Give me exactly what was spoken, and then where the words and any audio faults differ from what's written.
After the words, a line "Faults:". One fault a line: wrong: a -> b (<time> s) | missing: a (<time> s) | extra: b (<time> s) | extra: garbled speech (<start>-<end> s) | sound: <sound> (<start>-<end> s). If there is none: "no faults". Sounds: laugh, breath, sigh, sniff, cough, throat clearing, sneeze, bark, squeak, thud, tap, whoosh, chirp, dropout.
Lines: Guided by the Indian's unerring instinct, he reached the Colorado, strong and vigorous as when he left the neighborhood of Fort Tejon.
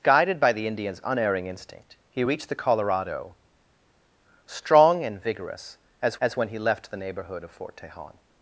Guided by the Indian's unerring instinct, he reached the Colorado, strong and vigorous as as when he left the neighborhood of Fort Tejon.
Faults:
extra: as (6.2 s)